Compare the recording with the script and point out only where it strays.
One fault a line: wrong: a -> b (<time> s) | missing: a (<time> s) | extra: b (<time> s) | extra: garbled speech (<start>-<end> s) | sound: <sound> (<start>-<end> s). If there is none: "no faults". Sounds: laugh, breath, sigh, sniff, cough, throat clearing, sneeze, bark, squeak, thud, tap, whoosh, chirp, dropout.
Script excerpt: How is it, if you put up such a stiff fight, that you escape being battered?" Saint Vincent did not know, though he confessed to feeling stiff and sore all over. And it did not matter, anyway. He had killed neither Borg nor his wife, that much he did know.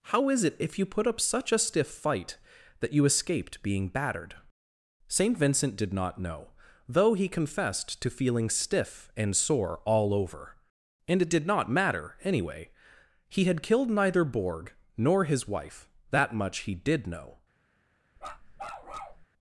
wrong: escape -> escaped (3.0 s)
sound: bark (18.2-19.3 s)